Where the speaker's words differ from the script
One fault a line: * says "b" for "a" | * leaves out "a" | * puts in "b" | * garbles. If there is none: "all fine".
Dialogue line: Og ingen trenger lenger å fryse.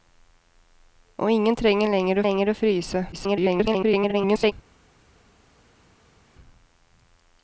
* puts in "lenger"
* garbles